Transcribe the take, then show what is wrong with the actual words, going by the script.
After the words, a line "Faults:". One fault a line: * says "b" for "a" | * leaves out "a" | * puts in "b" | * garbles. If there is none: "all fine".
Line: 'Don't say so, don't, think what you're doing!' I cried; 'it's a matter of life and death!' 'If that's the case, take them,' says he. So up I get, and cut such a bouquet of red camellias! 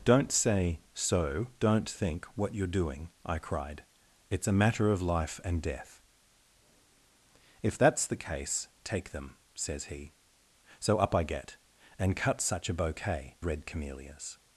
'Don't say so, don't, think what you're doing!' I cried; 'it's a matter of life and death!' 'If that's the case, take them,' says he. So up I get, and cut such a bouquet red camellias!
Faults:
* leaves out "of"